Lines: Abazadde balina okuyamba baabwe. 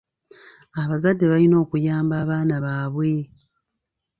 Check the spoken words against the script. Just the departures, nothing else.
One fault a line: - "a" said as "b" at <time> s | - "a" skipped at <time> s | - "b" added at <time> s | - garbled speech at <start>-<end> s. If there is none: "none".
- "abaana" added at 2.2 s